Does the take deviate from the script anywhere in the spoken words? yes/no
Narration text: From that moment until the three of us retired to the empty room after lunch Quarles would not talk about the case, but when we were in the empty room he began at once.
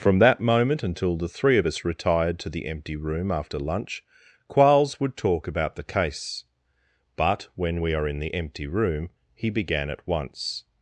yes